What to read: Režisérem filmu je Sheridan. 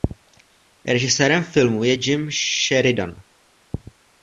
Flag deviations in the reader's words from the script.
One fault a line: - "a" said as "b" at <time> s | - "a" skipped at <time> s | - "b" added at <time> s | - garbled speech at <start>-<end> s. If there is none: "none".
- "Jim" added at 1.9 s